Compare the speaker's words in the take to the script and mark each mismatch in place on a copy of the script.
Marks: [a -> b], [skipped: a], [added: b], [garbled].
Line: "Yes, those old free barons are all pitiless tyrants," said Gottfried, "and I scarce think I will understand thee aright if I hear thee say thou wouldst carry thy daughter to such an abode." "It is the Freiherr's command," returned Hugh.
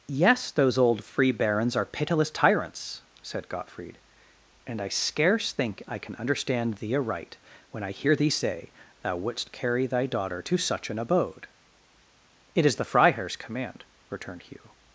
"Yes, those old free barons are [skipped: all] pitiless tyrants," said Gottfried, "and I scarce think I [will -> can] understand thee aright [if -> when] I hear thee say thou wouldst carry thy daughter to such an abode." "It is the Freiherr's command," returned Hugh.